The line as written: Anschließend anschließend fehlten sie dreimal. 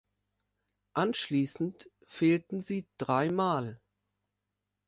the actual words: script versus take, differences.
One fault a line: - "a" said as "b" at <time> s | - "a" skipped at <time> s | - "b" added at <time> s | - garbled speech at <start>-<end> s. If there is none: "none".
- "anschließend" skipped at 1.9 s